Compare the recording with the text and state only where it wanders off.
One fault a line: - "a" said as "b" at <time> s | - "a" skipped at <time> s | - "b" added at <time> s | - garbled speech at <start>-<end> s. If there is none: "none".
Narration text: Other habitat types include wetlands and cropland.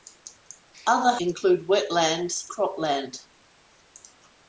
- "habitat types" skipped at 1.1 s
- "and" skipped at 2.5 s